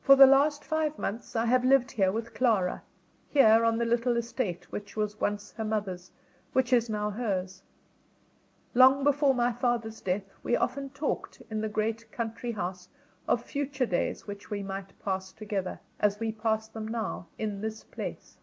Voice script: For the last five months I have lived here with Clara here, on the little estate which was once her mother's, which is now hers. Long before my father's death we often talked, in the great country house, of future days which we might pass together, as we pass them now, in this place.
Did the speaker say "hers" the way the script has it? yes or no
yes